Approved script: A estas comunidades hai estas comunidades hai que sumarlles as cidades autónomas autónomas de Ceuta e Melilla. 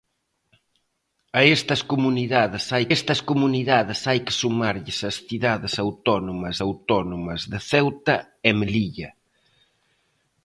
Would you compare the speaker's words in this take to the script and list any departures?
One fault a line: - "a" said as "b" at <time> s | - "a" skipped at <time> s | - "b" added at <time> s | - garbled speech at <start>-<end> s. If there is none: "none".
none